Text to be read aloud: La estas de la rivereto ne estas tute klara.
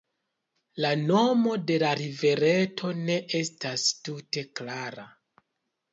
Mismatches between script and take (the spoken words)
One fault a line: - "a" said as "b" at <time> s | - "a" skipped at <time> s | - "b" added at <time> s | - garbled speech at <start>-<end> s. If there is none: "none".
- "estas" said as "nomo" at 1.0 s